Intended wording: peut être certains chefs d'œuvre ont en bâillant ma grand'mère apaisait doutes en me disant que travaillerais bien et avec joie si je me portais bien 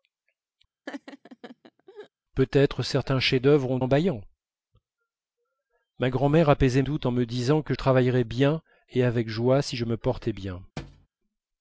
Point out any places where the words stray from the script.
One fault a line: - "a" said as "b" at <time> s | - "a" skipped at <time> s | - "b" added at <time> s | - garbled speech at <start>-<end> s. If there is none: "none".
none